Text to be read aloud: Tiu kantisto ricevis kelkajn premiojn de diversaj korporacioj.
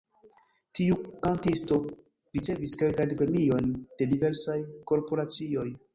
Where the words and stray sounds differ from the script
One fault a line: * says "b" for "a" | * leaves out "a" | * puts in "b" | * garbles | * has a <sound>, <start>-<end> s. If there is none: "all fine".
all fine